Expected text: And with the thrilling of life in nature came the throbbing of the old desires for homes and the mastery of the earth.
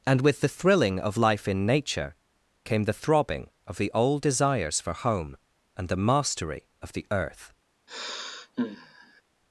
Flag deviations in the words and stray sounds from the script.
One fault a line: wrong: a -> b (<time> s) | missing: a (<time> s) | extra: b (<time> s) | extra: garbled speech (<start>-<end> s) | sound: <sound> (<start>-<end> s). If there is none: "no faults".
wrong: homes -> home (4.9 s)
sound: sigh (7.9-9.2 s)